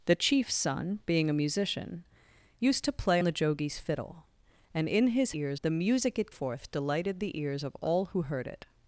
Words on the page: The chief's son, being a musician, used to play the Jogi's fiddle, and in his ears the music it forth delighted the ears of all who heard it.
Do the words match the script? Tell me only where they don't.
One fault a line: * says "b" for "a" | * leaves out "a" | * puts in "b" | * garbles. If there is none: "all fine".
all fine